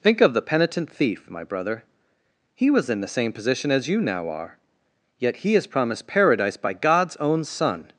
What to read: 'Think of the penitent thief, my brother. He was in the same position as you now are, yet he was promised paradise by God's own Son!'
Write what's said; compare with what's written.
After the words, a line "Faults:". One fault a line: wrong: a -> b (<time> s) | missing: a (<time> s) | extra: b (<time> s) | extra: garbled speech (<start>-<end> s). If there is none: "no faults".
'Think of the penitent thief, my brother. He was in the same position as you now are, yet he is promised paradise by God's own Son!'
Faults:
wrong: was -> is (5.6 s)